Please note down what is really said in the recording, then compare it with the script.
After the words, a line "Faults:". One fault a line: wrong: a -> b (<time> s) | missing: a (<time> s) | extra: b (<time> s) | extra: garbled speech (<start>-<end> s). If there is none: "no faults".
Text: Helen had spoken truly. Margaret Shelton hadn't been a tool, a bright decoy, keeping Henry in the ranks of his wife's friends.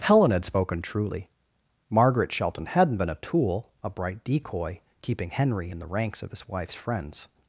Helen had spoken truly. Margaret Shelton hadn't been a tool, a bright decoy, keeping Henry in the ranks of his wife's friends.
Faults:
no faults